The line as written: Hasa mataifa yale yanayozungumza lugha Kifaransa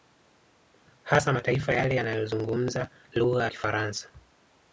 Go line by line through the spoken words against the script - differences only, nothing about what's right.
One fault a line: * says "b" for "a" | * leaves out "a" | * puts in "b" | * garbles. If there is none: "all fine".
all fine